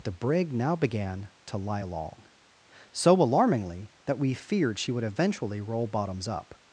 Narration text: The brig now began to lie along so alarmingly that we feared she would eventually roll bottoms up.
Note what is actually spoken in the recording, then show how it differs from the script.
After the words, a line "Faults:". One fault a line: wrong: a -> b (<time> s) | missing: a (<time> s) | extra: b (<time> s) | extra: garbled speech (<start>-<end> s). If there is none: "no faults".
The brig now began to lie along so alarmingly that we feared she would eventually roll bottoms up.
Faults:
no faults